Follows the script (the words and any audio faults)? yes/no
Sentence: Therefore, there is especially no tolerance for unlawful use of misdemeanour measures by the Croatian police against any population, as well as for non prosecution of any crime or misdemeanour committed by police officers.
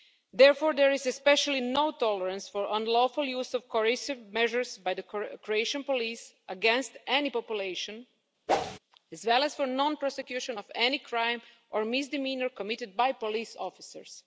no